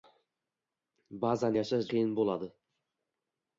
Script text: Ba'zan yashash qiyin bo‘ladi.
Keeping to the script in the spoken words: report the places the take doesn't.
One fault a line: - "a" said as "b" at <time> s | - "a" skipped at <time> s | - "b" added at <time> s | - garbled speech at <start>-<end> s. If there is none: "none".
none